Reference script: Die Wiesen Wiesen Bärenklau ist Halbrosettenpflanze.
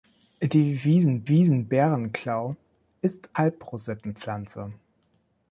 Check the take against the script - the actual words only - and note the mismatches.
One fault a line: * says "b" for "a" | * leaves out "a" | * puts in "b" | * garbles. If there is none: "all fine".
all fine